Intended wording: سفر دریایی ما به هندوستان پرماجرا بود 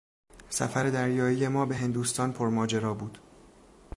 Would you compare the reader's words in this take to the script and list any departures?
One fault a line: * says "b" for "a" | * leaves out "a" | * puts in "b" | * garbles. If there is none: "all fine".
all fine